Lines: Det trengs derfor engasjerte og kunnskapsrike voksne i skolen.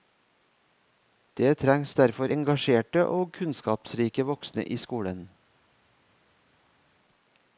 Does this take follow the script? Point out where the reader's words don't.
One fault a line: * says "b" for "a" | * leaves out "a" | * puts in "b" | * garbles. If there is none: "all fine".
all fine